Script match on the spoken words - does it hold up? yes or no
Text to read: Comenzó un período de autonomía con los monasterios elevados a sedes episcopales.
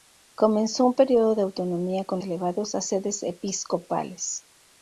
no